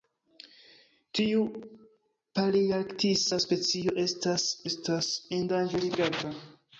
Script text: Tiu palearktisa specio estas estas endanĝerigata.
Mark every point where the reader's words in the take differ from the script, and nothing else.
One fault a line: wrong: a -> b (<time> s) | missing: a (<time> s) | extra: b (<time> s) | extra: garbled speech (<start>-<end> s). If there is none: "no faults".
no faults